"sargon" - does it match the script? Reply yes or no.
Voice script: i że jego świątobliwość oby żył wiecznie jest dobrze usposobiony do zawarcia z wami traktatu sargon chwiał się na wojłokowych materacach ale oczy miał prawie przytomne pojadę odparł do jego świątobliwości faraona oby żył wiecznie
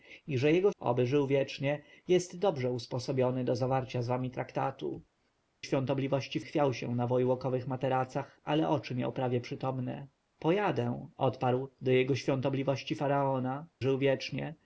no